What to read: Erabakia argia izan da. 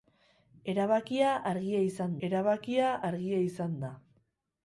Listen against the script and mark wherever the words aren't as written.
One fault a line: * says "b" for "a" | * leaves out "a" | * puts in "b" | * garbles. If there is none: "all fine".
* puts in "erabakia argia izan"